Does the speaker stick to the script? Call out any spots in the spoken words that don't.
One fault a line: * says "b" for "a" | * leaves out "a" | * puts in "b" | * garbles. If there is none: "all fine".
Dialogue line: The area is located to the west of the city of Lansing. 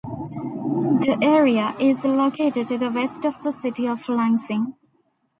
all fine